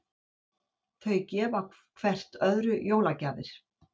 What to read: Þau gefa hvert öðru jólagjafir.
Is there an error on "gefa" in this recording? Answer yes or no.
no